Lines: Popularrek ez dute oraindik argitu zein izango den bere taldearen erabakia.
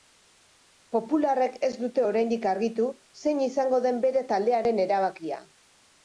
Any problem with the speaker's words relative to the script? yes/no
no